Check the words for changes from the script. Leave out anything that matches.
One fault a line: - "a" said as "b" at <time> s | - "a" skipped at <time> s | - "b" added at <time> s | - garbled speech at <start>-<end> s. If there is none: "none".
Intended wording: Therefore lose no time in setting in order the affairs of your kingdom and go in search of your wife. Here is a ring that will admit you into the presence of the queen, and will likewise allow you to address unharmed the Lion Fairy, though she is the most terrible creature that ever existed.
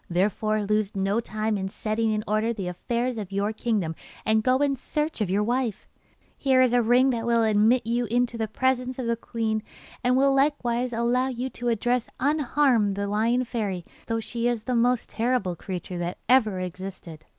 none